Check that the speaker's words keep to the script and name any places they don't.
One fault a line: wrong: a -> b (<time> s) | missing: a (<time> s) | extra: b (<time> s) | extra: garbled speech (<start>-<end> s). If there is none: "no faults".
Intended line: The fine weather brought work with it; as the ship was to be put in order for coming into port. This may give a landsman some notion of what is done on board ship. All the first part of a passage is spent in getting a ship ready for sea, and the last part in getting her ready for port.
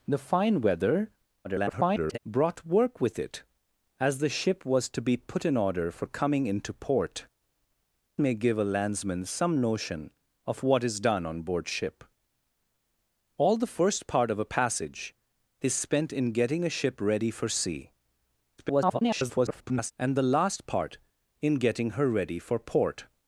extra: garbled speech (1.4-2.2 s)
missing: This (7.3 s)
extra: garbled speech (18.6-19.9 s)